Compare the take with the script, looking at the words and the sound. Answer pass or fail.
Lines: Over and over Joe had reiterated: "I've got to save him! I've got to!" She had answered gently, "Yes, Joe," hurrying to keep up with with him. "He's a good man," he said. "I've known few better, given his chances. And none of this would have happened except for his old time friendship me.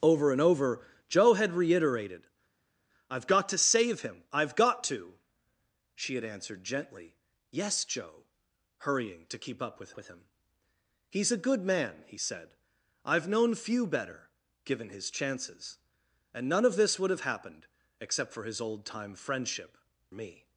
pass